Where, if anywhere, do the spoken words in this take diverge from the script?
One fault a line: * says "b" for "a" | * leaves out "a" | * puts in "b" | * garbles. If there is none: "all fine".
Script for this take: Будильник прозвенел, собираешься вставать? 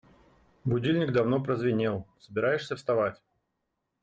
* puts in "давно"